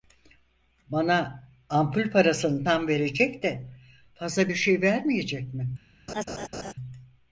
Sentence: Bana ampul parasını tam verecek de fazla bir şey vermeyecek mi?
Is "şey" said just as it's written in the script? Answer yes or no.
yes